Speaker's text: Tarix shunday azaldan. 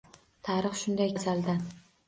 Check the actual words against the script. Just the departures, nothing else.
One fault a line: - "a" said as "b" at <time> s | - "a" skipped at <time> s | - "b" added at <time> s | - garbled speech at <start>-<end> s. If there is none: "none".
none